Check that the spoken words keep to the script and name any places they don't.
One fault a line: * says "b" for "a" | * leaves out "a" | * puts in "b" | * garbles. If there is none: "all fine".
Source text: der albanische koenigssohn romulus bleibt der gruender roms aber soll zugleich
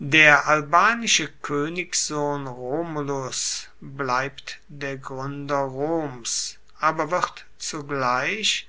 * says "wird" for "soll"